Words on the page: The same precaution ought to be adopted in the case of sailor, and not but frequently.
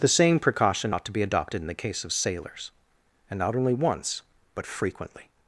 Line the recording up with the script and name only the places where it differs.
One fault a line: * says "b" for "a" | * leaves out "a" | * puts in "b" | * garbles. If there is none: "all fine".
* says "sailors" for "sailor"
* puts in "only once"